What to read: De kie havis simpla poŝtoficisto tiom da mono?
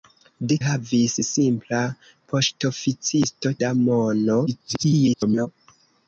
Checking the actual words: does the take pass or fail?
fail